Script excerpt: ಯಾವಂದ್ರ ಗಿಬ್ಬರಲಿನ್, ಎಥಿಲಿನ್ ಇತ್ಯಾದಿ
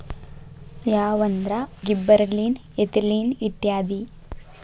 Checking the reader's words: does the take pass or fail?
pass